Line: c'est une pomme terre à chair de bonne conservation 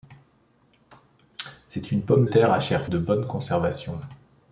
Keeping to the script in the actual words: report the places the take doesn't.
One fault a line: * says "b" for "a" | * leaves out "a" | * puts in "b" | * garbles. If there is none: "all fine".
all fine